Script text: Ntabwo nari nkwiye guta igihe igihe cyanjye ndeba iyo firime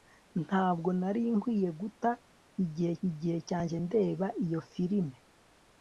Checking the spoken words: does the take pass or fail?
pass